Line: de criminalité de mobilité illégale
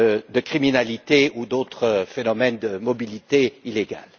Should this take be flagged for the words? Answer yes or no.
yes